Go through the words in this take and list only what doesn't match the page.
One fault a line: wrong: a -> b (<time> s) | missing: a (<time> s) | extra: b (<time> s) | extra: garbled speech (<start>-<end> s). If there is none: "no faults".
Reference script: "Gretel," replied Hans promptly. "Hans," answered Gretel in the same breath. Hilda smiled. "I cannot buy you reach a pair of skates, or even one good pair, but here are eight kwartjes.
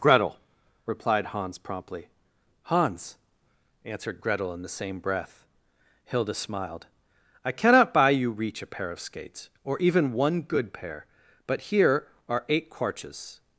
no faults